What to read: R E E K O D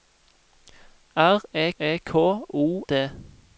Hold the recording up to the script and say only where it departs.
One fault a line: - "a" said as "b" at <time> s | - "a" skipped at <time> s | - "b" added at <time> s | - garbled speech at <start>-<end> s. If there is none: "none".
none